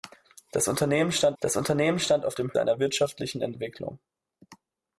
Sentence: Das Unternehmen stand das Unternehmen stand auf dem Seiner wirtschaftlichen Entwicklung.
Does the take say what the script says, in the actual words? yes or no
yes